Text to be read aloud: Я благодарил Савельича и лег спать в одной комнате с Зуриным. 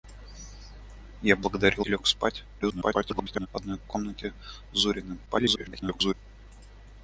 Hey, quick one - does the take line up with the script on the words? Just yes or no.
no